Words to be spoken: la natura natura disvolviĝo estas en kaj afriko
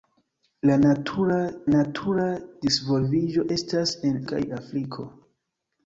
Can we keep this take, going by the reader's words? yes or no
yes